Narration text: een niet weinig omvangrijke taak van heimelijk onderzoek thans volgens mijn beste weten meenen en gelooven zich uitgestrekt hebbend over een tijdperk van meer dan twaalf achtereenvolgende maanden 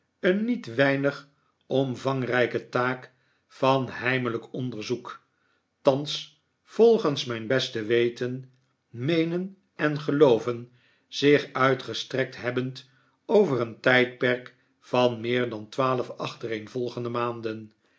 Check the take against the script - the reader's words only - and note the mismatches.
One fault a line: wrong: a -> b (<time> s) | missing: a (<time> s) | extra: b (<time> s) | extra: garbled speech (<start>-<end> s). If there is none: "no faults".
no faults